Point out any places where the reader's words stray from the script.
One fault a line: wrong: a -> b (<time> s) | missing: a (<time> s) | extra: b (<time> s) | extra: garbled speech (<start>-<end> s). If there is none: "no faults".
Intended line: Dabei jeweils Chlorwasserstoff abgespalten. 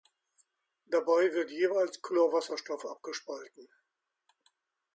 extra: wird (1.3 s)